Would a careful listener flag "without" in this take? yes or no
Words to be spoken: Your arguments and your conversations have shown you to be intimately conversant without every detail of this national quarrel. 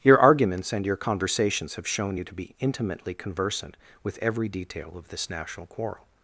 yes